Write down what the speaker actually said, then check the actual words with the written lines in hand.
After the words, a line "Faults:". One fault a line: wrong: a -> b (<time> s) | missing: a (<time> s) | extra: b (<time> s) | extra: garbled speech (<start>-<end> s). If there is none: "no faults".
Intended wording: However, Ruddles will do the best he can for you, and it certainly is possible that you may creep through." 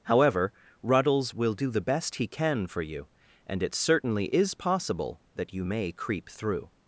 However, Ruddles will do the best he can for you, and it certainly is possible that you may creep through."
Faults:
no faults